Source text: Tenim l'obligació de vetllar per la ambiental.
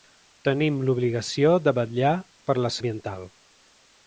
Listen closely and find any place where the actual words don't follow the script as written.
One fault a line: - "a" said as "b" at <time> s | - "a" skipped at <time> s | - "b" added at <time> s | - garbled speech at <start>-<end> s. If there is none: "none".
none